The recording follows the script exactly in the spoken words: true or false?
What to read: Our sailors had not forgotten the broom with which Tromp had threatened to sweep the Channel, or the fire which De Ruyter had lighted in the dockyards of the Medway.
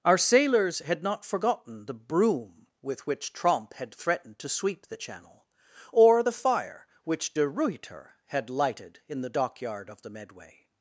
false